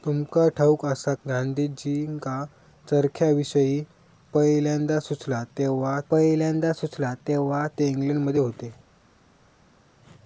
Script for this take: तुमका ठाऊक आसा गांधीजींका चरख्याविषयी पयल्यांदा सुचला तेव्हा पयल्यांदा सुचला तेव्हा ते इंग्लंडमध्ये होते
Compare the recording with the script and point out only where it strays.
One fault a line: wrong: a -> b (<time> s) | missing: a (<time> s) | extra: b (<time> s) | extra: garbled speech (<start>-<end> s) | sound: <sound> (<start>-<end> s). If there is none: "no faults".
no faults